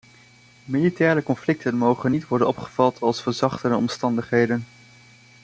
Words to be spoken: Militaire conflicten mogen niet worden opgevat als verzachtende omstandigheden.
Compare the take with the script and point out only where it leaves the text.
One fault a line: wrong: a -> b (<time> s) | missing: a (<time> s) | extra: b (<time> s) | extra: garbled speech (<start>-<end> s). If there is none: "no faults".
no faults